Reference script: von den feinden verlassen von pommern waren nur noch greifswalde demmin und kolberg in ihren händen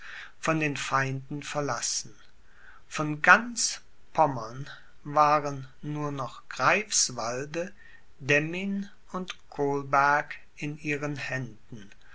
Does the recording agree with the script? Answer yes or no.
no